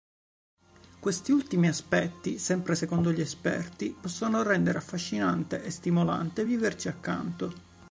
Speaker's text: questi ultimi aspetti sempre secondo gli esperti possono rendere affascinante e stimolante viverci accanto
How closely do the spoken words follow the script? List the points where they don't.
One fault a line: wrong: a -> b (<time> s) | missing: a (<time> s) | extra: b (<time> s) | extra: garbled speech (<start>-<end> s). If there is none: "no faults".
no faults